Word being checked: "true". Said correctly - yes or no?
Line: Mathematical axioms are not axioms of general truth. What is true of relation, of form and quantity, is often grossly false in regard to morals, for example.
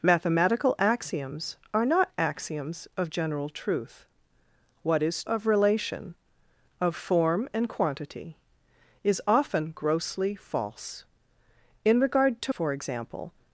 no